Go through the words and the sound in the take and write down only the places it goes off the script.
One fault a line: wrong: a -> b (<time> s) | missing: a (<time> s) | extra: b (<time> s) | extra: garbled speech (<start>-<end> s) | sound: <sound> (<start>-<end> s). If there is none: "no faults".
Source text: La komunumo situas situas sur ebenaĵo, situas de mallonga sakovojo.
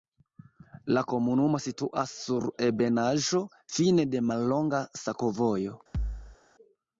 missing: situas (2.1 s)
wrong: situas -> fine (3.8 s)
sound: thud (5.9-6.4 s)